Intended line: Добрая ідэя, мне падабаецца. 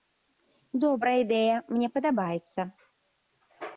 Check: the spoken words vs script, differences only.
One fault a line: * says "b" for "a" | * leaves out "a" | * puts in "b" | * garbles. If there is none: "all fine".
all fine